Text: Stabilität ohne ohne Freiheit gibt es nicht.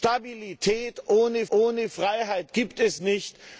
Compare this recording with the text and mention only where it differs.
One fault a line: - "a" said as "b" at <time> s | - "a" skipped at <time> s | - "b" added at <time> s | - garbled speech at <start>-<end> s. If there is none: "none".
none